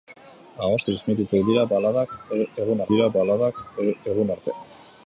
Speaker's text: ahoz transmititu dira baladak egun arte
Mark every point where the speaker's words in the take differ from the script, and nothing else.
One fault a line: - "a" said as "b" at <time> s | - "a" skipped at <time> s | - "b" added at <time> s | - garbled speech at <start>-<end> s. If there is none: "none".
- "dira baladak egun" added at 2.9 s